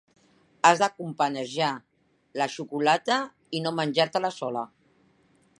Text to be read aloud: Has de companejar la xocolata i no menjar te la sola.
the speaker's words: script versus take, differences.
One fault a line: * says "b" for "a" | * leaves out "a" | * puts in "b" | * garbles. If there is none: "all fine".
all fine